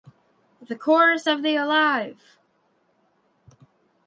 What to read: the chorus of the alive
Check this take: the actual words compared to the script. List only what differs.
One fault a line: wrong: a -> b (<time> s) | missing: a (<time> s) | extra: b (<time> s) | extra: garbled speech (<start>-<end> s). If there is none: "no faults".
no faults